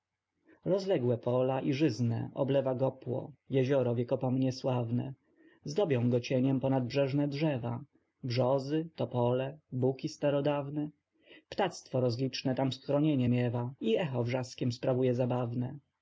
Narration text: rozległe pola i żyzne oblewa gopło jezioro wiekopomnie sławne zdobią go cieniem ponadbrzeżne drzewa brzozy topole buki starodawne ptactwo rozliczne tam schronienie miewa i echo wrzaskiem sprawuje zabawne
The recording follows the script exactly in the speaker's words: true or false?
true